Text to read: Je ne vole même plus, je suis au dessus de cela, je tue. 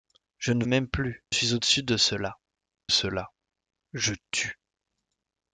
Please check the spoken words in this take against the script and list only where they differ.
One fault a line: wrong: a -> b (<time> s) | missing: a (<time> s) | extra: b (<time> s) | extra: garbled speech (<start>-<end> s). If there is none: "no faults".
missing: vole (0.7 s)
missing: je (1.2 s)
extra: cela (2.9 s)